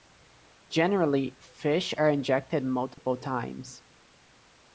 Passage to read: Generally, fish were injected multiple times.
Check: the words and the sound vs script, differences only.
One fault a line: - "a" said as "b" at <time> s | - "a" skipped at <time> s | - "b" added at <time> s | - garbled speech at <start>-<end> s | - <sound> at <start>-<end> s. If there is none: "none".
- "were" said as "are" at 1.9 s
- dropout at 2.9-3.0 s